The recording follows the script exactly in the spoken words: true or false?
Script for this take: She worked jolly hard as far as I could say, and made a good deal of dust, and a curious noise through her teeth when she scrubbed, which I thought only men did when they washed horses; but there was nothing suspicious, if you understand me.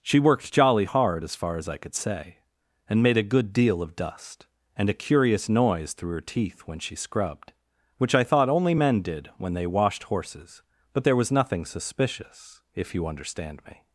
true